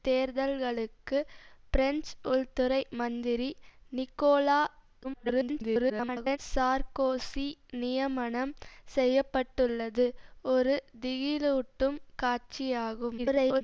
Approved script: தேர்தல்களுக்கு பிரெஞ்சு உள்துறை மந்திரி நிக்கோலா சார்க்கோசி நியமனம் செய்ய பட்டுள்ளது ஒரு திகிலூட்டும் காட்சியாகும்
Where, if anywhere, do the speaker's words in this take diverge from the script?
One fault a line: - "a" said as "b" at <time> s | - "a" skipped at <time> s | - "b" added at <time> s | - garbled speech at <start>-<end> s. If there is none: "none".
- garbled speech at 5.0-6.4 s
- garbled speech at 13.2-13.6 s